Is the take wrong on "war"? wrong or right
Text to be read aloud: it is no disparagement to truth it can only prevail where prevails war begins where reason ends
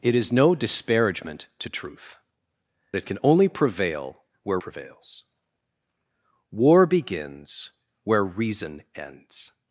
right